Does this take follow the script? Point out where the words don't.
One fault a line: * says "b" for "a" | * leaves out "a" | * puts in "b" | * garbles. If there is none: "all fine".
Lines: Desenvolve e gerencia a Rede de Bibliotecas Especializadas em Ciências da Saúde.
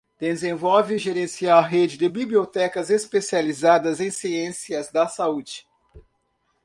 all fine